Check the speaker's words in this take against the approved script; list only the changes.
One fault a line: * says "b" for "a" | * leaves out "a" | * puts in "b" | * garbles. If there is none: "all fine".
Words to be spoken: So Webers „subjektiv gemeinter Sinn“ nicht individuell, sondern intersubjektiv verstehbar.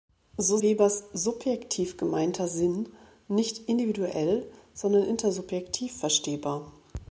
all fine